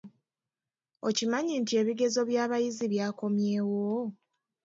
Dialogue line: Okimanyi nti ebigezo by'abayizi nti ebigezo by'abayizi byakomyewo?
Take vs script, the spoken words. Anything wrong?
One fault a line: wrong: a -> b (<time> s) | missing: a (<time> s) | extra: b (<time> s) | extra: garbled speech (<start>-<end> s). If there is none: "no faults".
missing: nti ebigezo by'abayizi (2.9 s)